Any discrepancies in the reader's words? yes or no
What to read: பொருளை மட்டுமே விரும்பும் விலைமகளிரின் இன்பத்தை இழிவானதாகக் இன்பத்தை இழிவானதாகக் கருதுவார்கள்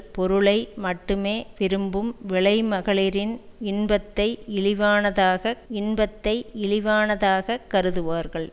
no